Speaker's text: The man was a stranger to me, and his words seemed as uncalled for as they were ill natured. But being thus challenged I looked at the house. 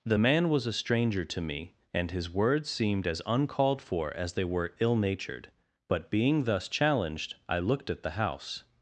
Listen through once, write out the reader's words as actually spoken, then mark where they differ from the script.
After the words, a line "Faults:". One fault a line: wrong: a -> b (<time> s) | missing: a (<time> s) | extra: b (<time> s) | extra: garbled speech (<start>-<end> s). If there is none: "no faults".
The man was a stranger to me, and his words seemed as uncalled for as they were ill natured. But being thus challenged I looked at the house.
Faults:
no faults